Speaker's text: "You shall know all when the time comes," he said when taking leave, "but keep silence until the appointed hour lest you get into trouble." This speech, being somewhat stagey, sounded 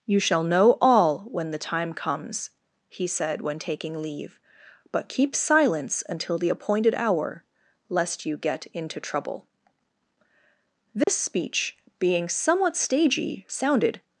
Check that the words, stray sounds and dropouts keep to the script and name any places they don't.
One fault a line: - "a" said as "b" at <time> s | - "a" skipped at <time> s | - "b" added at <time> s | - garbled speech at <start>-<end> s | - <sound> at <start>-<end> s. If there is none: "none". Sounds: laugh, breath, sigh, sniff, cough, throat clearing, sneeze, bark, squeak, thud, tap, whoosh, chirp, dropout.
- dropout at 11.0-11.1 s